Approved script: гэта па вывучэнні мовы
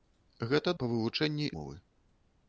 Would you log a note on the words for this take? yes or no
no